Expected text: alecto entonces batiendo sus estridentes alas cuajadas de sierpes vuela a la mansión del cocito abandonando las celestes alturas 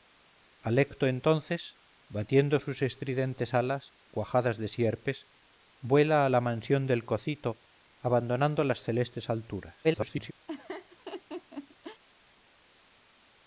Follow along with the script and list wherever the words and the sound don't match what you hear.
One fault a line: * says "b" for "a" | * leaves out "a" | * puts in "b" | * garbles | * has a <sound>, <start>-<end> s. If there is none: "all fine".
* garbles
* has a laugh, 10.5-12.0 s